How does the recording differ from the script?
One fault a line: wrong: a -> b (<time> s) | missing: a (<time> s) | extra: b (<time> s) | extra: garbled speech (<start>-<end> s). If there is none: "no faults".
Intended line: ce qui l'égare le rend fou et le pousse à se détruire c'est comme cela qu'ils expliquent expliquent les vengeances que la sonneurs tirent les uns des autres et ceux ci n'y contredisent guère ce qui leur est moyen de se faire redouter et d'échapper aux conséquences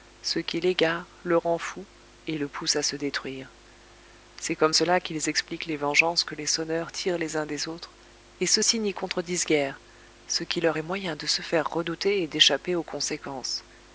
missing: expliquent (5.6 s)
wrong: la -> les (6.3 s)